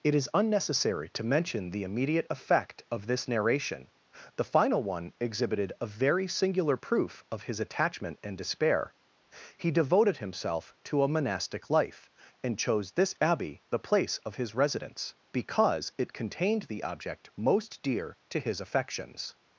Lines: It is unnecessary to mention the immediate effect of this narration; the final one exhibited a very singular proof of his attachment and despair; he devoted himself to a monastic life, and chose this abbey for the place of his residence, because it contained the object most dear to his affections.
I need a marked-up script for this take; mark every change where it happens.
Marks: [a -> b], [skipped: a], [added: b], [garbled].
It is unnecessary to mention the immediate effect of this narration; the final one exhibited a very singular proof of his attachment and despair; he devoted himself to a monastic life, and chose this abbey [skipped: for] the place of his residence, because it contained the object most dear to his affections.